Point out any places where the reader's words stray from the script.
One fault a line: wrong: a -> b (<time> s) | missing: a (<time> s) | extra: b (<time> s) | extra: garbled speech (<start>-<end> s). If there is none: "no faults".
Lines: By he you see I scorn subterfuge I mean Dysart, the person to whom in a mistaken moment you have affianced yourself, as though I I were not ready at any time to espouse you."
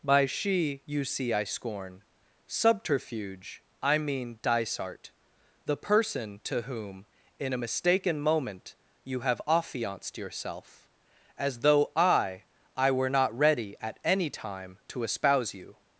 wrong: he -> she (0.2 s)